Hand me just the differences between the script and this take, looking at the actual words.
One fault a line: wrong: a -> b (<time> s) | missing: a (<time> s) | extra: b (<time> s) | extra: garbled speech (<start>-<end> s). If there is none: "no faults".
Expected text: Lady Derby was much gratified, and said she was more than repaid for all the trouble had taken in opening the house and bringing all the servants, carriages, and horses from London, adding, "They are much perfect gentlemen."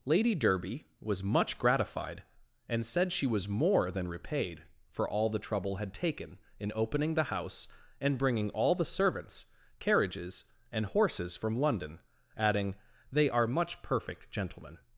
no faults